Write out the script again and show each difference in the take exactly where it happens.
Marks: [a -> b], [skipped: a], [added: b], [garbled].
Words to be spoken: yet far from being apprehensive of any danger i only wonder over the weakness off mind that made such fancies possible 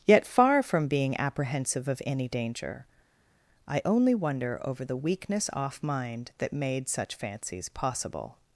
yet far from being apprehensive of any danger i only wonder over the weakness off mind that made such fancies possible